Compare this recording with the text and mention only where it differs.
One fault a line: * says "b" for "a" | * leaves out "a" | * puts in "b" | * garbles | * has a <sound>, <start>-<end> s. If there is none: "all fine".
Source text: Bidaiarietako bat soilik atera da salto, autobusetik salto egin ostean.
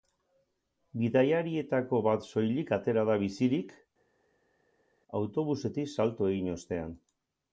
* says "bizirik" for "salto"